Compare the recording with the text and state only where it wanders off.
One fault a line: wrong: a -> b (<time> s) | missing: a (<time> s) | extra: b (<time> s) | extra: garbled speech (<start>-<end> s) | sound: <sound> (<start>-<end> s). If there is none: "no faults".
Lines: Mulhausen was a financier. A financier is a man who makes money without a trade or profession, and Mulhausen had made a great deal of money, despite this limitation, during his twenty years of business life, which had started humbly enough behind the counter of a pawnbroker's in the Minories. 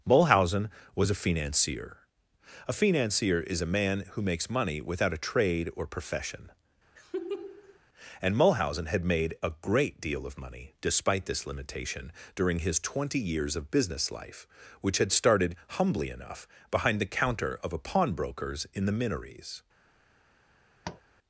sound: laugh (7.0-7.8 s)
sound: tap (20.8-21.0 s)